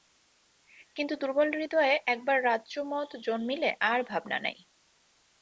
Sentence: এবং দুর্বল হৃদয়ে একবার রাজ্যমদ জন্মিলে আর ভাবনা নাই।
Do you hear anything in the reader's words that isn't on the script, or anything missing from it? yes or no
yes